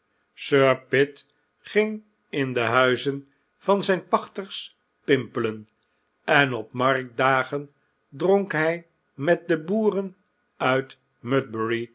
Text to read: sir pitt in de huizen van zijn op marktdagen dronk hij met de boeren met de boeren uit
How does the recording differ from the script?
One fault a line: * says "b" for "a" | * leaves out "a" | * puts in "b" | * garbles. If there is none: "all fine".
* puts in "ging"
* puts in "pachters pimpelen en"
* leaves out "met de boeren"